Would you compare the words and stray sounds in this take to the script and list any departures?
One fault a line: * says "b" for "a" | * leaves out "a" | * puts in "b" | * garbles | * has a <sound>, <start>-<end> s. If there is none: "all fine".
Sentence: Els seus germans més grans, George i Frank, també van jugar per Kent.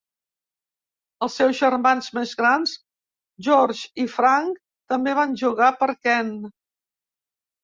all fine